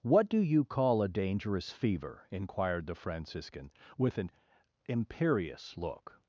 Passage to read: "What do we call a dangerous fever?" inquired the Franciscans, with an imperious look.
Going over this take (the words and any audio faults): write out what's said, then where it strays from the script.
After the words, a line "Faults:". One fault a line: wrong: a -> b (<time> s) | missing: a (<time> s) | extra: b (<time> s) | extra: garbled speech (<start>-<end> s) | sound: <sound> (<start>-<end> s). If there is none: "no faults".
"What do you call a dangerous fever?" inquired the Franciscan, with an imperious look.
Faults:
wrong: we -> you (0.4 s)
wrong: Franciscans -> Franciscan (2.9 s)